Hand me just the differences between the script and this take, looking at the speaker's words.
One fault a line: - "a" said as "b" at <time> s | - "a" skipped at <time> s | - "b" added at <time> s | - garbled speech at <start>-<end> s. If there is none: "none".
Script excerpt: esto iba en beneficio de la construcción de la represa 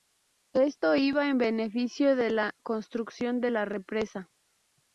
none